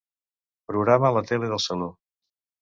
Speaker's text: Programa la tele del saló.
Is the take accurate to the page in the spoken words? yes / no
yes